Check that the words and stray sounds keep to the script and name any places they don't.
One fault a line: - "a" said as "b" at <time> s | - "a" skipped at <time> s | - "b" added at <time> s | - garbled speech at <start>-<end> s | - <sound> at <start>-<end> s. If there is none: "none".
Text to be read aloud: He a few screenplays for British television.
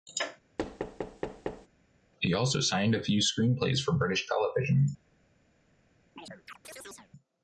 - thud at 0.6-1.7 s
- "also signed" added at 2.3 s
- chirp at 6.2-7.1 s